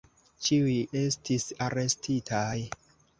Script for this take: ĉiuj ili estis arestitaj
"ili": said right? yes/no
no